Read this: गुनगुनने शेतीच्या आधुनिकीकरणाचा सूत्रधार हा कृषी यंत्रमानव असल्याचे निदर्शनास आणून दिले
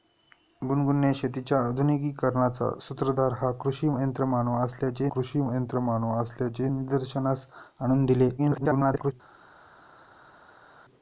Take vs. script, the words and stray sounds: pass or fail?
fail